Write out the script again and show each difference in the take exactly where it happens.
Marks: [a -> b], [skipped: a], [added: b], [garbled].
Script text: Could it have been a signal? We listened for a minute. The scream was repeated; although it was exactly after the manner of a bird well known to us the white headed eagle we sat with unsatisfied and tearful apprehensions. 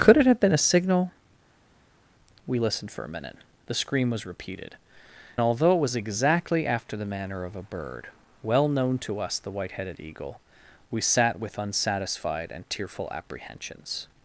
Could it have been a signal? We listened for a minute. The scream was repeated; although it was exactly after the manner of a bird well known to us the white headed eagle we sat with unsatisfied and tearful apprehensions.